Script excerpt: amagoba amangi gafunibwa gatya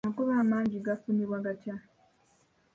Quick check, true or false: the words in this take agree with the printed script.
true